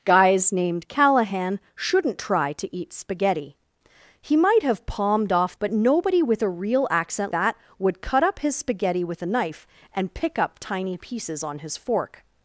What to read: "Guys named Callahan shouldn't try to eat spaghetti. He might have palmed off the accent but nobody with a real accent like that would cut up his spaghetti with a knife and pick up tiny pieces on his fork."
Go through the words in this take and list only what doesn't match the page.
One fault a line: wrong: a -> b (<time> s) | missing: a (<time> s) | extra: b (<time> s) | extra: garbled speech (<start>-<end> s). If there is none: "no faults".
missing: the accent (5.5 s)
missing: like (7.3 s)